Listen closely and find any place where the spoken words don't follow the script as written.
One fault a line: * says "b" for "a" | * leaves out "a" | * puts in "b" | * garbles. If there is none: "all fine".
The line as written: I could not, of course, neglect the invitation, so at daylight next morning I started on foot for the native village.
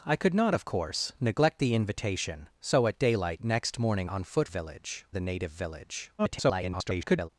* leaves out "I started"
* says "village" for "for"
* garbles